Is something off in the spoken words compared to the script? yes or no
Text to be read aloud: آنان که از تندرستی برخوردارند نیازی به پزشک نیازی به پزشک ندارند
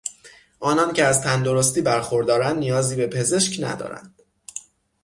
yes